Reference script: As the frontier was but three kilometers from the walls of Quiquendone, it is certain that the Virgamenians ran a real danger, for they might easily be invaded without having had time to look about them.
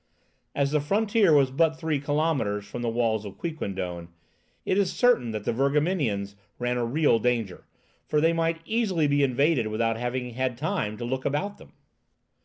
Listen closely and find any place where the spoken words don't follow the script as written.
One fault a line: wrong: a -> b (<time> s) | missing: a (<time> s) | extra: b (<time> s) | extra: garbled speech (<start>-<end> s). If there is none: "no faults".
no faults